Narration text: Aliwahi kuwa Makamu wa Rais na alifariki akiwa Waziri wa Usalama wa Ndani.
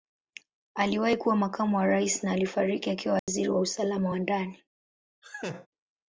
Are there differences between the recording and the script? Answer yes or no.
no